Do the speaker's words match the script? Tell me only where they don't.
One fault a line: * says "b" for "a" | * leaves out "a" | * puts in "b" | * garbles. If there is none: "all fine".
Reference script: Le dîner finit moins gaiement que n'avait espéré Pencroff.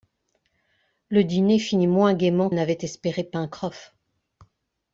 * leaves out "que"